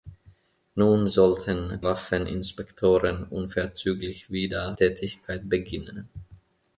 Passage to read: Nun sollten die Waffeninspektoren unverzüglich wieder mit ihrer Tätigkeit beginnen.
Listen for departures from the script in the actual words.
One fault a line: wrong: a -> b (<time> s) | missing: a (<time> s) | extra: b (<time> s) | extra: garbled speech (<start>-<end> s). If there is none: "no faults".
missing: die (1.8 s)
missing: mit ihrer (4.8 s)